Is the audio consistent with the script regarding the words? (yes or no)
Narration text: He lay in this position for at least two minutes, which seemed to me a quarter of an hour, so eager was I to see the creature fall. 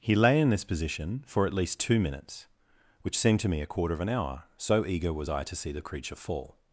yes